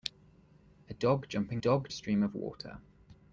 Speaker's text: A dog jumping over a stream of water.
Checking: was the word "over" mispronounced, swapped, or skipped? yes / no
yes